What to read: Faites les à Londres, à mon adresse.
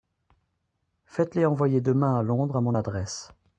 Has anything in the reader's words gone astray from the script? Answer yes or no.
yes